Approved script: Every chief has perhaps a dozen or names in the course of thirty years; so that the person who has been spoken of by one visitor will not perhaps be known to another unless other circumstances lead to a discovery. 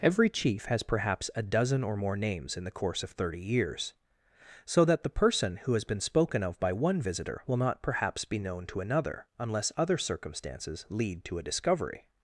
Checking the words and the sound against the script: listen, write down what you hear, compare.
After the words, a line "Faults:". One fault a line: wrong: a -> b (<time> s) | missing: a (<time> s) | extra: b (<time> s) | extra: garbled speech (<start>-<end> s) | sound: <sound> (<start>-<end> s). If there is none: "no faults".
Every chief has perhaps a dozen or more names in the course of thirty years; so that the person who has been spoken of by one visitor will not perhaps be known to another unless other circumstances lead to a discovery.
Faults:
extra: more (1.9 s)